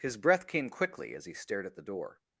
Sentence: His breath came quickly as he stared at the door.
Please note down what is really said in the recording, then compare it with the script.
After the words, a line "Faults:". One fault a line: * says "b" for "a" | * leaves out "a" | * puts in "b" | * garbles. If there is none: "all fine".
His breath came quickly as he stared at the door.
Faults:
all fine